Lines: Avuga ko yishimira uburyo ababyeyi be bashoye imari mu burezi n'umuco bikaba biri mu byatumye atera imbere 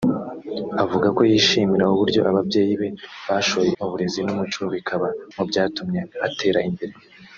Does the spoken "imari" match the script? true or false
false